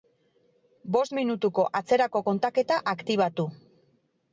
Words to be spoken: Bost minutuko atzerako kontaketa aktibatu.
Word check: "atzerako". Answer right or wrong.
right